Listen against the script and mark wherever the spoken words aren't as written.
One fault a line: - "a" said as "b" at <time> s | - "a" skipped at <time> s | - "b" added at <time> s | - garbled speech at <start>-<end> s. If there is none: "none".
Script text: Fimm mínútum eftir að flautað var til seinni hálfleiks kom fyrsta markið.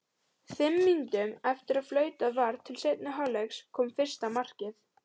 none